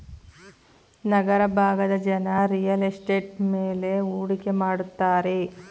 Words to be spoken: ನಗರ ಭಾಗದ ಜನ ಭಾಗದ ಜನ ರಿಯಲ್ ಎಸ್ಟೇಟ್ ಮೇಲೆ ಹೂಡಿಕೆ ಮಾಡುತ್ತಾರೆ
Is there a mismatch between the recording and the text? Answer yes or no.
yes